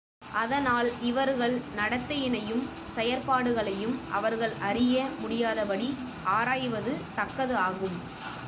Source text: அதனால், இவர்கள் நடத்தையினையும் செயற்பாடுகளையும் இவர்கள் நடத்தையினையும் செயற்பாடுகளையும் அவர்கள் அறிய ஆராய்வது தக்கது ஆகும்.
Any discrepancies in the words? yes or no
yes